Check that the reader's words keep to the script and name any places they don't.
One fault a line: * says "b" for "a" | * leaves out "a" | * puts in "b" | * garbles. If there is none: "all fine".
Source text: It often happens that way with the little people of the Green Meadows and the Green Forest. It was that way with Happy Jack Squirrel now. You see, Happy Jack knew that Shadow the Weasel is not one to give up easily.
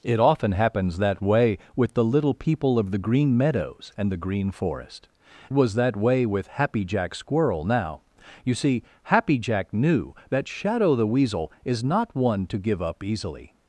* leaves out "It"